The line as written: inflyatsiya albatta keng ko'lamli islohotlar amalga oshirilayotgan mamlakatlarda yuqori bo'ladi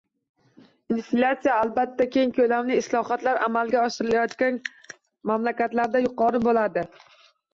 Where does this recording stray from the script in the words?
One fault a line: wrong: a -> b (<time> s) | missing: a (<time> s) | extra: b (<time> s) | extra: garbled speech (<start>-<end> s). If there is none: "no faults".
no faults